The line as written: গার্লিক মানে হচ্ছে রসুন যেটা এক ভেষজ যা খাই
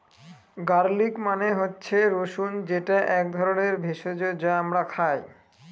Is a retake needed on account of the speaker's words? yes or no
yes